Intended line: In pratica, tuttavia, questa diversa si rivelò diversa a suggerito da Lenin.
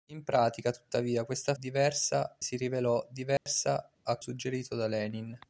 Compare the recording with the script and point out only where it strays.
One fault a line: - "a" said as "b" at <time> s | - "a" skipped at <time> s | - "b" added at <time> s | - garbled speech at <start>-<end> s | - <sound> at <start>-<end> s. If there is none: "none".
- dropout at 3.4-3.5 s